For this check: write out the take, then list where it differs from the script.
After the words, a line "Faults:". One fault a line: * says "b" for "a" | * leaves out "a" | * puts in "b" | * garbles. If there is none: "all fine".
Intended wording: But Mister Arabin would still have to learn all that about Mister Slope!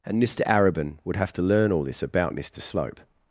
And Mister Arabin would have to learn all this about Mister Slope!
Faults:
* says "And" for "But"
* leaves out "still"
* says "this" for "that"